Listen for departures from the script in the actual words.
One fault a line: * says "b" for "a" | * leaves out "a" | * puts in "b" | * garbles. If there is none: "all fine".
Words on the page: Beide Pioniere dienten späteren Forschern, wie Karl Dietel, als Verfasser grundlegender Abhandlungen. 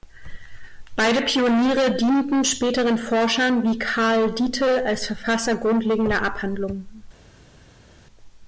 all fine